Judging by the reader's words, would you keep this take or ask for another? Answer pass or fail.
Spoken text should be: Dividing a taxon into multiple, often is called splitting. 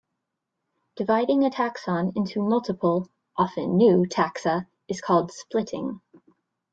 fail